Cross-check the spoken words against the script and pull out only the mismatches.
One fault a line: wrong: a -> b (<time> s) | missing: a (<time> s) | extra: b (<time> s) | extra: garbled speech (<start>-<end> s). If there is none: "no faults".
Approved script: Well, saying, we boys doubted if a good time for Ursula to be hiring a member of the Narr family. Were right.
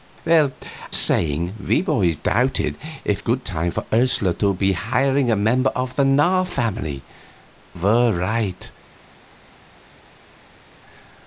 no faults